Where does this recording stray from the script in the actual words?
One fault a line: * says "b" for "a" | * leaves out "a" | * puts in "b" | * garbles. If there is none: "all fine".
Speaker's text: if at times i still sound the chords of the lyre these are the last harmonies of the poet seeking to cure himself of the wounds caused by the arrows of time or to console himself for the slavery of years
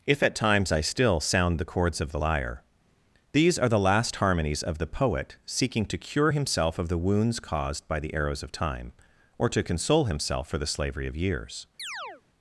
all fine